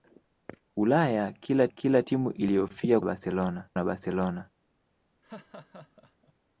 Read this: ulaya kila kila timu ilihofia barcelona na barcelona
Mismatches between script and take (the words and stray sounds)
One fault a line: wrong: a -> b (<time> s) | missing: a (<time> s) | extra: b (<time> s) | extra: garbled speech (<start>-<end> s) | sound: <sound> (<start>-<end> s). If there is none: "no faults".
sound: laugh (5.2-6.3 s)